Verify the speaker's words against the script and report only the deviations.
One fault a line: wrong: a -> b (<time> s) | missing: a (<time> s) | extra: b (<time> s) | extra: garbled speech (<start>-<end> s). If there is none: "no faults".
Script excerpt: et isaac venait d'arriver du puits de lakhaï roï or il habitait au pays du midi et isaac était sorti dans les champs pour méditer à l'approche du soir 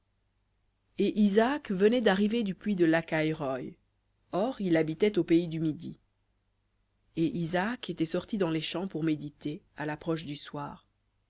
no faults